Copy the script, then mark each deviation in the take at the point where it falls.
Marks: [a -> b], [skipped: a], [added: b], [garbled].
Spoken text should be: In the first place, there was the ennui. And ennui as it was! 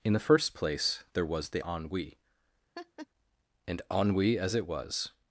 In the first place, there was the ennui. And ennui as it was!